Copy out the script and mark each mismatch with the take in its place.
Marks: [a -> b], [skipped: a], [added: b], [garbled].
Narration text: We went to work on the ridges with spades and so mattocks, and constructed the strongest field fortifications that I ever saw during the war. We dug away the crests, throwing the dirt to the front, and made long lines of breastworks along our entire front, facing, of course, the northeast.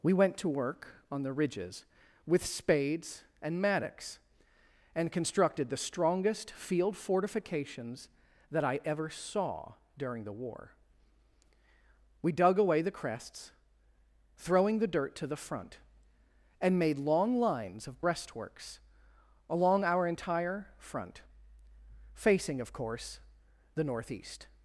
We went to work on the ridges with spades and [skipped: so] mattocks, and constructed the strongest field fortifications that I ever saw during the war. We dug away the crests, throwing the dirt to the front, and made long lines of breastworks along our entire front, facing, of course, the northeast.